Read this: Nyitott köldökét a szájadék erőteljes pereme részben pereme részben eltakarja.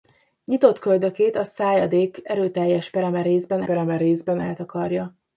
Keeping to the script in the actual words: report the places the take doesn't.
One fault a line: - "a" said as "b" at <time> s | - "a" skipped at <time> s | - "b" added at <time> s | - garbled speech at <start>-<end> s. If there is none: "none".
none